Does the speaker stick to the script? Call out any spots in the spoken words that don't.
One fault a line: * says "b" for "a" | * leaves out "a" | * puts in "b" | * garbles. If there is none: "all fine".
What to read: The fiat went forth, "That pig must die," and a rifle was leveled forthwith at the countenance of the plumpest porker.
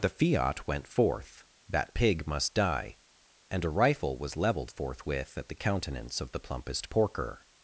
all fine